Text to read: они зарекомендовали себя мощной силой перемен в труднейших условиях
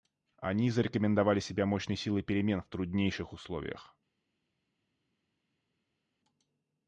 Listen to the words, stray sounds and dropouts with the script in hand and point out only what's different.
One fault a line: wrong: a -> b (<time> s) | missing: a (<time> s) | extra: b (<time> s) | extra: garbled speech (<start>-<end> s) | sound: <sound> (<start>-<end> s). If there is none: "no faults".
no faults